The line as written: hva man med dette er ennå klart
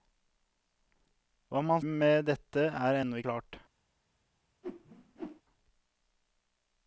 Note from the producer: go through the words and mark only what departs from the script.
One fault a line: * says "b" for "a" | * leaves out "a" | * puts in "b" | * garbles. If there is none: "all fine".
all fine